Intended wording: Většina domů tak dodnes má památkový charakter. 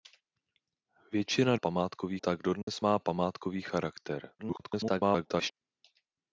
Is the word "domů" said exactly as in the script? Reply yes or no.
no